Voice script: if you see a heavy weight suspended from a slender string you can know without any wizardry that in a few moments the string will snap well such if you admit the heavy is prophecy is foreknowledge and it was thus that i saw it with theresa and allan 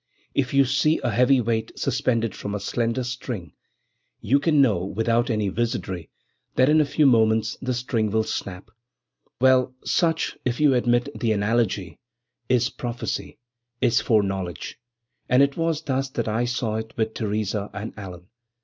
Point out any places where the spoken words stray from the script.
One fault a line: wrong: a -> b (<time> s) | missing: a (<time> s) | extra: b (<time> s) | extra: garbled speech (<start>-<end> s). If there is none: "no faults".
wrong: heavy -> analogy (11.3 s)